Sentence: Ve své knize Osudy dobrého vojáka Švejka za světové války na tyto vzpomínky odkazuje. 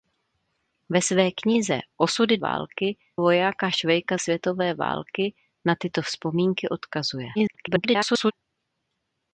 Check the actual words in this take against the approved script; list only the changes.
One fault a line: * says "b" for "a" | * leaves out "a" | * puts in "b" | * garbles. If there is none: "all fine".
* says "války" for "dobrého"
* leaves out "za"
* garbles